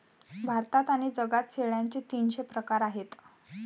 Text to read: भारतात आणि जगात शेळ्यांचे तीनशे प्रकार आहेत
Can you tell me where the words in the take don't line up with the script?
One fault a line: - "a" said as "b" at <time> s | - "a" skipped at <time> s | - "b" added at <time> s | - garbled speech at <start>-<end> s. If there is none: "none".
none